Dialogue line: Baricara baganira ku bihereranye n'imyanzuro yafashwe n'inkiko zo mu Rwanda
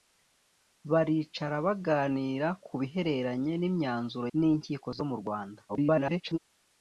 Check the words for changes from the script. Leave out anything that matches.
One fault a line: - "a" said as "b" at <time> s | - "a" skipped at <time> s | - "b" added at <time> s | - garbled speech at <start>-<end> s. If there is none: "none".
- "yafashwe" skipped at 4.3 s
- garbled speech at 5.7-6.4 s